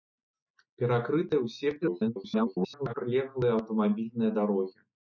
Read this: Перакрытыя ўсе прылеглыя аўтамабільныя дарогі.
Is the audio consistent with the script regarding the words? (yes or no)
no